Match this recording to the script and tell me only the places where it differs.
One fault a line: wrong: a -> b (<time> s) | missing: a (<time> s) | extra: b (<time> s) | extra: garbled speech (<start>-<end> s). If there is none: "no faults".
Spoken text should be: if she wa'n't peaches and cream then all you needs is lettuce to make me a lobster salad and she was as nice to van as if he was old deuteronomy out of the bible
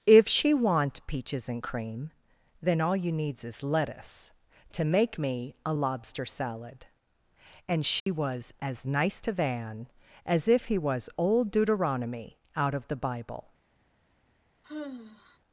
no faults